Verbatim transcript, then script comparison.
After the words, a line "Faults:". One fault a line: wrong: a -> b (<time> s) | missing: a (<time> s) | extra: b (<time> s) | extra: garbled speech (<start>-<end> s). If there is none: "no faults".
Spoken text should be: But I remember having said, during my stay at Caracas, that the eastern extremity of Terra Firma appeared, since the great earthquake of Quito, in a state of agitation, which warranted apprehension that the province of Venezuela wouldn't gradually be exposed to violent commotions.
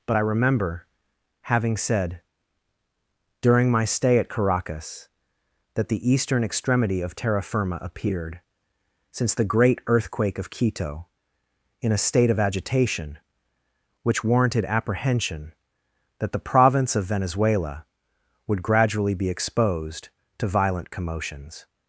But I remember having said, during my stay at Caracas, that the eastern extremity of Terra Firma appeared, since the great earthquake of Quito, in a state of agitation, which warranted apprehension that the province of Venezuela would gradually be exposed to violent commotions.
Faults:
wrong: wouldn't -> would (18.5 s)